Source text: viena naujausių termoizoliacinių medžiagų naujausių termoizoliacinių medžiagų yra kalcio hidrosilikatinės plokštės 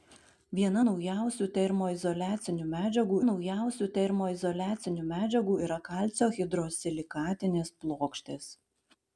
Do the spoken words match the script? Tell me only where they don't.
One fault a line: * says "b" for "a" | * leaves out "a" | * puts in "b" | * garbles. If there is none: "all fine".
all fine